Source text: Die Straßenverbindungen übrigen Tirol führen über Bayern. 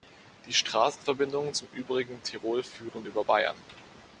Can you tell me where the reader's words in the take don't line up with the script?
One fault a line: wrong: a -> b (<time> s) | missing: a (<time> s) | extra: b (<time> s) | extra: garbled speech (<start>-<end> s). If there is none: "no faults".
extra: zum (1.5 s)